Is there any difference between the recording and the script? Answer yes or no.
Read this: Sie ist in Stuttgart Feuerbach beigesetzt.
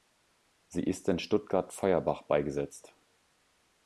no